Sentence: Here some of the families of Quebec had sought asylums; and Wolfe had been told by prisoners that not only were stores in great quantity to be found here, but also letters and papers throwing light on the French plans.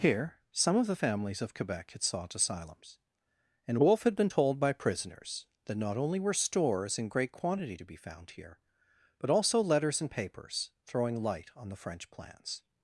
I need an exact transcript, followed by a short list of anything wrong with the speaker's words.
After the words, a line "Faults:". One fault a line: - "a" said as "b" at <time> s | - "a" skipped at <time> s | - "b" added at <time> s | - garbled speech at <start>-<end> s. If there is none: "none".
Here some of the families of Quebec had sought asylums; and Wolfe had been told by prisoners that not only were stores in great quantity to be found here, but also letters and papers throwing light on the French plans.
Faults:
none